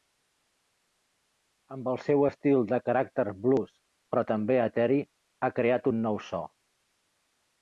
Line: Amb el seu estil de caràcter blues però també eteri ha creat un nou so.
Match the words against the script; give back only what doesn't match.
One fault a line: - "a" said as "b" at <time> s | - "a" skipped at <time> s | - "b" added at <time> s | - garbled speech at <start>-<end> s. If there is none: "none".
none